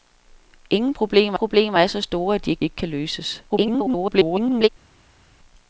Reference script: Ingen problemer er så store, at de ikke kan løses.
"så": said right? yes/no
yes